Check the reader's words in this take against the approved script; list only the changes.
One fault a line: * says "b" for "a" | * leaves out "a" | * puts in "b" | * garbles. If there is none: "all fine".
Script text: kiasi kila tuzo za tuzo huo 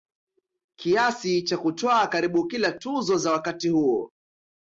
* puts in "cha kutwaa karibu"
* says "wakati" for "tuzo"